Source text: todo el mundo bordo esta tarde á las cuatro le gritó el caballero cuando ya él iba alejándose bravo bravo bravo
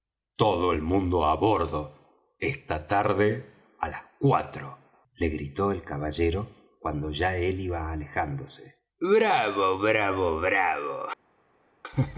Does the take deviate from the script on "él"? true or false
false